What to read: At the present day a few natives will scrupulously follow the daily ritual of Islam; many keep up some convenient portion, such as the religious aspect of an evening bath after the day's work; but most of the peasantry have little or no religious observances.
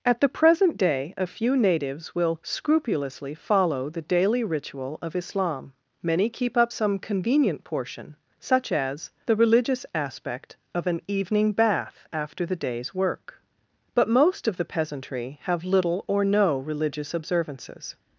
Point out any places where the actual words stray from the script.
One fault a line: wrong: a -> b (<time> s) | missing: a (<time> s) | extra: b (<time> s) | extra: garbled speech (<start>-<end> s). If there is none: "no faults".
no faults